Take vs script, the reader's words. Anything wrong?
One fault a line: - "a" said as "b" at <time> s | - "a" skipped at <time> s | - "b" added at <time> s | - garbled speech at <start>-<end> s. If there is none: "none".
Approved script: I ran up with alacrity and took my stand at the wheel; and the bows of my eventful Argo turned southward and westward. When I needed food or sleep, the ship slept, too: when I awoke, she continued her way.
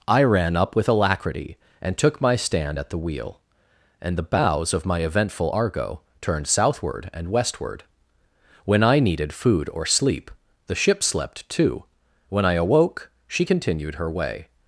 none